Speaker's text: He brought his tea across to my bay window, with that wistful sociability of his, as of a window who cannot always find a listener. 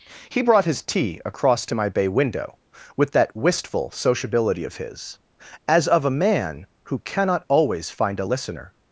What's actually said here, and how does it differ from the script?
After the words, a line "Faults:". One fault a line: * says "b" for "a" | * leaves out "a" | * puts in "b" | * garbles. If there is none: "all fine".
He brought his tea across to my bay window, with that wistful sociability of his, as of a man who cannot always find a listener.
Faults:
* says "man" for "window"